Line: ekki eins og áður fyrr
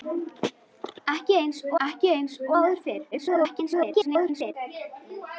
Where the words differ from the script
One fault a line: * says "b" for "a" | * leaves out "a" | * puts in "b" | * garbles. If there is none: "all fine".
* puts in "ekki eins og"
* garbles